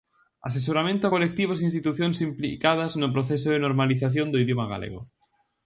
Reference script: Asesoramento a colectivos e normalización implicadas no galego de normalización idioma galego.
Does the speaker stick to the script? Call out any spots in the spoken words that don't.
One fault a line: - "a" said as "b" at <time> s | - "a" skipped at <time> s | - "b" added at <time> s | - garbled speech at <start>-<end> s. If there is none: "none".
- "normalización" said as "institucións" at 1.7 s
- "galego" said as "proceso" at 3.1 s
- "do" added at 4.3 s